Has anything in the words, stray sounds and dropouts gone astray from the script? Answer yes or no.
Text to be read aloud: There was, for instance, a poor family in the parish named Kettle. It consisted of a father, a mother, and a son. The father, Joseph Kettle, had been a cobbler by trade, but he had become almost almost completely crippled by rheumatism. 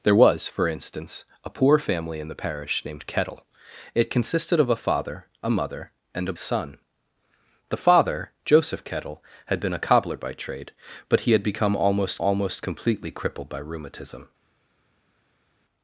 no